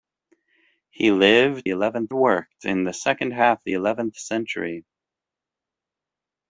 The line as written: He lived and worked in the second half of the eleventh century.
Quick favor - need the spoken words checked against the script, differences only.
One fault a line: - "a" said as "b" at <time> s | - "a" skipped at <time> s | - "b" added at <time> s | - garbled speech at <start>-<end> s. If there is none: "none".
- "and" said as "eleventh" at 1.7 s
- "of" skipped at 3.6 s